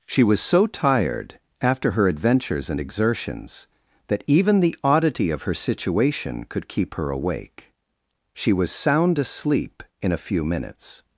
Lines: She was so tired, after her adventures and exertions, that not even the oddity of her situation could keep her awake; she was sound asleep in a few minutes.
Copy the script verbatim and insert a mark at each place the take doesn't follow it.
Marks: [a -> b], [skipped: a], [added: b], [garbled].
She was so tired, after her adventures and exertions, that [skipped: not] even the oddity of her situation could keep her awake; she was sound asleep in a few minutes.